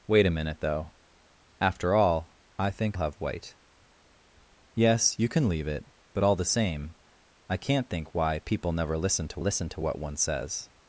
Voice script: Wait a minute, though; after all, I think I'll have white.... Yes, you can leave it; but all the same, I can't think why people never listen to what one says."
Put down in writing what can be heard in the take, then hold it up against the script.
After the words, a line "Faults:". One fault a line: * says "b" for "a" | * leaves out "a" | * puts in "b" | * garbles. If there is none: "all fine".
Wait a minute, though; after all, I think Have white.... Yes, you can leave it; but all the same, I can't think why people never listen to listen to what one says."
Faults:
* leaves out "I'll"
* puts in "listen to"